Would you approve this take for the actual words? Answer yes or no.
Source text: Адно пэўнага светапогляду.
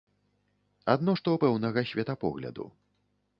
no